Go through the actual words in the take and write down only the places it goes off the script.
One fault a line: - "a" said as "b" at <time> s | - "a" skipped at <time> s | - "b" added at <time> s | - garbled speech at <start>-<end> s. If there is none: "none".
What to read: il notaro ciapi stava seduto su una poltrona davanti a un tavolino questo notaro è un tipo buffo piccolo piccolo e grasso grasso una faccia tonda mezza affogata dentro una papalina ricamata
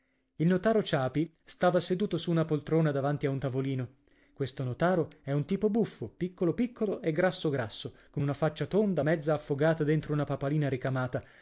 - "con" added at 8.1 s